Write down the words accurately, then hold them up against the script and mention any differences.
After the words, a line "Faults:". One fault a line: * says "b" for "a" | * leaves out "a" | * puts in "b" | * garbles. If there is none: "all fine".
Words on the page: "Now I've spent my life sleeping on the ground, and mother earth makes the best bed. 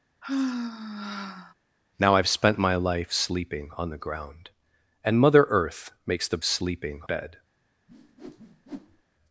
"Now I've spent my life sleeping on the ground, and mother earth makes the sleeping bed.
Faults:
* says "sleeping" for "best"